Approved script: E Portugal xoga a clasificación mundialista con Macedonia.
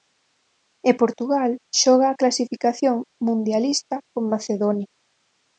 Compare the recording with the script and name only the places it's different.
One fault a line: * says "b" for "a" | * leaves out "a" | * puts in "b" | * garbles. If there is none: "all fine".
all fine